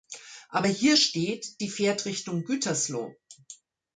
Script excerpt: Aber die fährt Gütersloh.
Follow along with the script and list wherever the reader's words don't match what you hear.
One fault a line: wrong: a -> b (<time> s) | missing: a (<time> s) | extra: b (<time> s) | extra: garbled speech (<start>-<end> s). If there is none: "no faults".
extra: hier steht (0.6 s)
extra: Richtung (2.0 s)